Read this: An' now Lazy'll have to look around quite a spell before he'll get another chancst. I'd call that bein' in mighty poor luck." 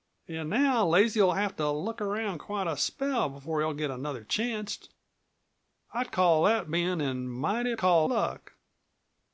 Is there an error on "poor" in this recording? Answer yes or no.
yes